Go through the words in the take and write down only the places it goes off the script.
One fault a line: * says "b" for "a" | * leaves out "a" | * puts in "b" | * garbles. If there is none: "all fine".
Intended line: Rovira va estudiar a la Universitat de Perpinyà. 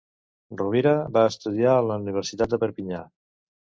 all fine